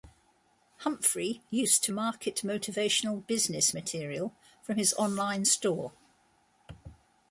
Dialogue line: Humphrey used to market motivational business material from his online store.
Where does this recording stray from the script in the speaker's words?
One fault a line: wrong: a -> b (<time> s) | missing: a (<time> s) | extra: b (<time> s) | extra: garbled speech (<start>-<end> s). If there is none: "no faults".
no faults